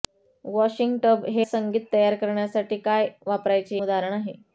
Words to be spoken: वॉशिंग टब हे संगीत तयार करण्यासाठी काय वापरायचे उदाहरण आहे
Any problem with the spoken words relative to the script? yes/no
no